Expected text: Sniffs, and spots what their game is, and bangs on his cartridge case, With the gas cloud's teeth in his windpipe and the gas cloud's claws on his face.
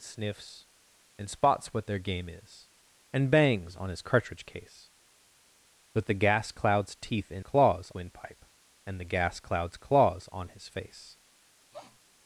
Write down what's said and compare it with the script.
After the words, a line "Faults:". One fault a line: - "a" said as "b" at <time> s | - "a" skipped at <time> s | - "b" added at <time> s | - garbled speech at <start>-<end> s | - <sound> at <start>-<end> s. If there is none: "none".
Sniffs, and spots what their game is, and bangs on his cartridge case, With the gas cloud's teeth in claws windpipe and the gas cloud's claws on his face.
Faults:
- "his" said as "claws" at 7.4 s
- sniff at 11.7-12.0 s